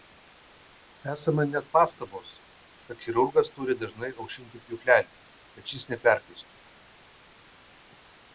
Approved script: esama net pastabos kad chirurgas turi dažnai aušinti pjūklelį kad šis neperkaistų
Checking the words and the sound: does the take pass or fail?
pass